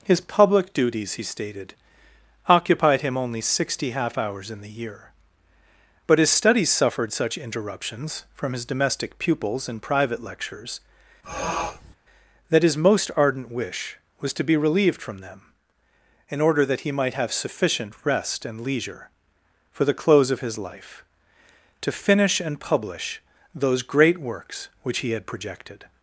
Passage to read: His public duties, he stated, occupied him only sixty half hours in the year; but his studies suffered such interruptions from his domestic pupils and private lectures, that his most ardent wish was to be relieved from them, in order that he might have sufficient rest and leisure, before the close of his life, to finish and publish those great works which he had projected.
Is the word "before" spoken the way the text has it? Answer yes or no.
no